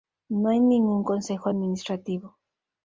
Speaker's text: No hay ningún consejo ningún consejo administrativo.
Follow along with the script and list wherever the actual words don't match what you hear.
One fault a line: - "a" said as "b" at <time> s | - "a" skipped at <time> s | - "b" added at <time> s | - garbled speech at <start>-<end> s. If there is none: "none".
- "ningún consejo" skipped at 1.5 s